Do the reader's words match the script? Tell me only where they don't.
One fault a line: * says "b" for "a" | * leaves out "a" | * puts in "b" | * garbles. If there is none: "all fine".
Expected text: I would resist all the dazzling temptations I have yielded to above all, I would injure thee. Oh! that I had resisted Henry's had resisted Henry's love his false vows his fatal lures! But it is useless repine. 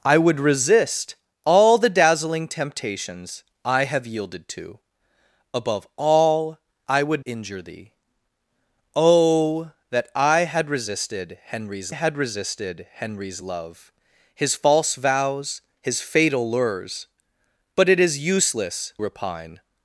all fine